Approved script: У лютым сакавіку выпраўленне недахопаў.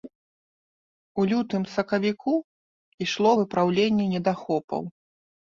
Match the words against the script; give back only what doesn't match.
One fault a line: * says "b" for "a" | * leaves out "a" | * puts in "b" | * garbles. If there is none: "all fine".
* puts in "ішло"